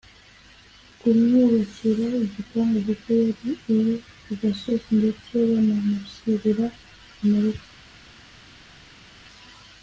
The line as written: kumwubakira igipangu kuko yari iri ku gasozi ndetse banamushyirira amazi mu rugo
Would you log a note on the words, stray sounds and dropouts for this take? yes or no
yes